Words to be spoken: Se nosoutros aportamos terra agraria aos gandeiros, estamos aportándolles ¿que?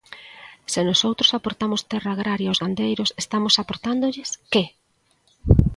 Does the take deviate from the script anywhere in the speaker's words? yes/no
no